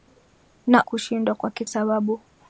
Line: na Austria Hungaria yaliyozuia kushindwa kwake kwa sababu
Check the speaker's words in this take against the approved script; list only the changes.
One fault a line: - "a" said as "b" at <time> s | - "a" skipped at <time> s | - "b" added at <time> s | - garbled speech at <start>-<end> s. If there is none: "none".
- "Austria Hungaria yaliyozuia" skipped at 0.8 s
- "kwa" skipped at 1.6 s